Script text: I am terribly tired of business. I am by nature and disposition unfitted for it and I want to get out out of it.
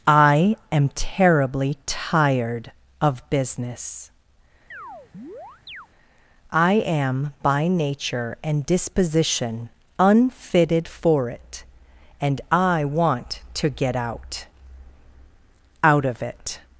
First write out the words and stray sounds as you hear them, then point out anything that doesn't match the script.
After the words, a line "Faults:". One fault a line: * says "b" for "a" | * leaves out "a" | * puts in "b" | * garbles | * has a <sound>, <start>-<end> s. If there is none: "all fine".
I am terribly tired of business. I am by nature and disposition unfitted for it and I want to get out out of it.
Faults:
* has a chirp, 4.7-5.9 s